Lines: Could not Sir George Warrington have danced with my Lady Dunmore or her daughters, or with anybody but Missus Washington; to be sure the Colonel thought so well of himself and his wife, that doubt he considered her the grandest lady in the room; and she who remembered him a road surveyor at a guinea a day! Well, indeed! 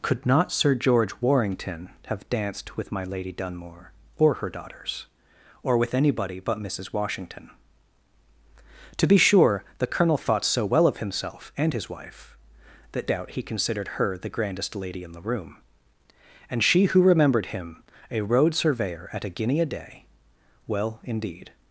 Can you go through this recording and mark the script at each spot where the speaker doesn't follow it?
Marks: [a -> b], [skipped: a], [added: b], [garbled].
Could not Sir George Warrington have danced with my Lady Dunmore or her daughters, or with anybody but Missus Washington; to be sure the Colonel thought so well of himself and his wife, that doubt he considered her the grandest lady in the room; and she who remembered him a road surveyor at a guinea a day! Well, indeed!